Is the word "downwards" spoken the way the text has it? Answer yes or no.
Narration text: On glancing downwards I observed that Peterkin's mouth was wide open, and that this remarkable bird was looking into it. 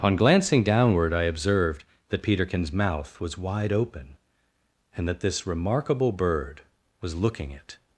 no